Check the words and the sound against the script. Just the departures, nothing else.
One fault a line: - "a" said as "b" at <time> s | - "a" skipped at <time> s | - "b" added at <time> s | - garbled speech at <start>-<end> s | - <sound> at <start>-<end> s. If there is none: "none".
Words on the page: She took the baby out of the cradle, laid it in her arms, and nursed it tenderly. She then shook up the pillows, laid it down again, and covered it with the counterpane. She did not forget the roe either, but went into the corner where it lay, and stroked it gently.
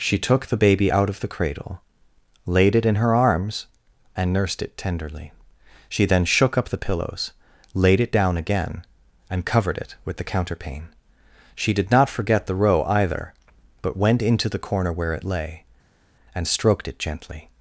none